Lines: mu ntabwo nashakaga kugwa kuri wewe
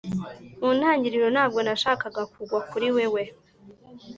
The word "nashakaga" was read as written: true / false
true